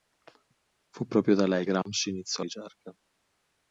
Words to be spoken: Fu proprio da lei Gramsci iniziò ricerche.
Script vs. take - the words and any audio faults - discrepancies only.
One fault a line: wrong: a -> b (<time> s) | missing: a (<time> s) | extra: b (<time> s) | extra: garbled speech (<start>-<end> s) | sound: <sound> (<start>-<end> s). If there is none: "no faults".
no faults